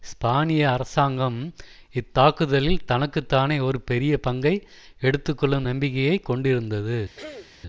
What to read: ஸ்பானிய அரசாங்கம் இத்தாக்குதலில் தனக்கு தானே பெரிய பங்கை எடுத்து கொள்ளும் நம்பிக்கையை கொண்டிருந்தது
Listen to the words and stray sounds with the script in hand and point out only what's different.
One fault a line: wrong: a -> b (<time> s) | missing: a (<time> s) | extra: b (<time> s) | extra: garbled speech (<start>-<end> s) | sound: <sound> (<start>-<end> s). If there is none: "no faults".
extra: ஒரு (3.6 s)
sound: throat clearing (7.2-7.6 s)